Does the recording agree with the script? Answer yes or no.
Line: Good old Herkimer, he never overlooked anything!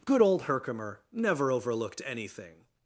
no